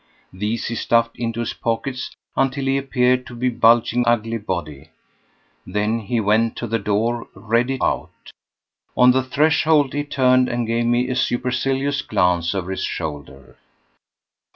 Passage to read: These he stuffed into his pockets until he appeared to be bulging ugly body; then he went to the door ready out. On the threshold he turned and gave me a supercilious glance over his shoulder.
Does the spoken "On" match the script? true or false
true